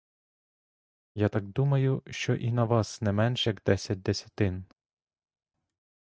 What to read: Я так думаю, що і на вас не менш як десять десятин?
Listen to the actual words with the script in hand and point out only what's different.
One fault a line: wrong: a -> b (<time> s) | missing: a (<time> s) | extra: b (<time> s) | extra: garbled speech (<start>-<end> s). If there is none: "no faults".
no faults